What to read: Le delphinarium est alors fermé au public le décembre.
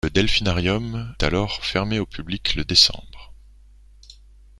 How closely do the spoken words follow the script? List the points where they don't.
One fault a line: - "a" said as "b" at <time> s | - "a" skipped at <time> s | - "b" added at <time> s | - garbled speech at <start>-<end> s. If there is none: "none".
- "est" skipped at 1.1 s